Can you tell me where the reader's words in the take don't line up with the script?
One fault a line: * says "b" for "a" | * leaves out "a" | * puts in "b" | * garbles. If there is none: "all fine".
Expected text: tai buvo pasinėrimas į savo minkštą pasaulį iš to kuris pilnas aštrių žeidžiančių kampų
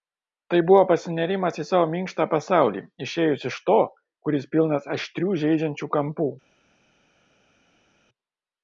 * puts in "išėjus"